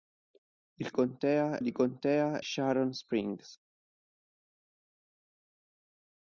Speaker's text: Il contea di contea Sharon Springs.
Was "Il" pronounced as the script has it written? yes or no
yes